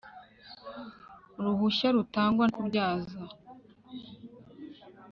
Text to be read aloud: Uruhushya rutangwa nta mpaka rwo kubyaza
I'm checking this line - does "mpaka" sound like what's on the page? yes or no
no